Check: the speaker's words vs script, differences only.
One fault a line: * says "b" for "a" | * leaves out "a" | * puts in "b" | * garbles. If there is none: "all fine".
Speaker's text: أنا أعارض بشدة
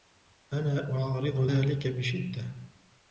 * puts in "ذلك"